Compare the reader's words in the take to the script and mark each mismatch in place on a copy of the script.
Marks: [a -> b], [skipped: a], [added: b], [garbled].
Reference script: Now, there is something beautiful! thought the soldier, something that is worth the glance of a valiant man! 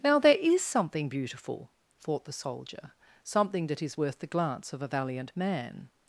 Now, there is something beautiful! thought the soldier, something that is worth the glance of a valiant man!